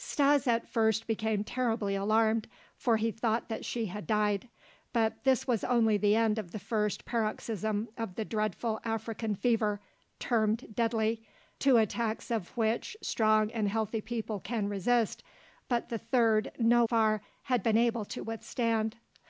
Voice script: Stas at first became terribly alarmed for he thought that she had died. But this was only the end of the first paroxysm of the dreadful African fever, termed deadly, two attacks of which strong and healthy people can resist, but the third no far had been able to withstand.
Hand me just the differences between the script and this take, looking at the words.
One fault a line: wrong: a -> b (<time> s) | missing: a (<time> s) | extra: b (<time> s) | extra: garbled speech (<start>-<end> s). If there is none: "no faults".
no faults